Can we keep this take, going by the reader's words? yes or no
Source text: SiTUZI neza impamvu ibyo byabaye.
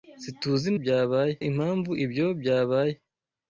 no